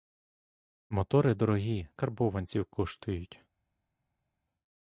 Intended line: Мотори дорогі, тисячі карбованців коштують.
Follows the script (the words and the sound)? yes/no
no